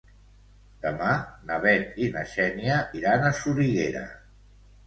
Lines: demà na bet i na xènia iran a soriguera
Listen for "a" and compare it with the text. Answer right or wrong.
right